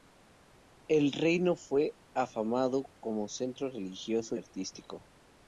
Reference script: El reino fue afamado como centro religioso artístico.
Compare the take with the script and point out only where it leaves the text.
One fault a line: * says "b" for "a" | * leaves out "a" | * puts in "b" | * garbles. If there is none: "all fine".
all fine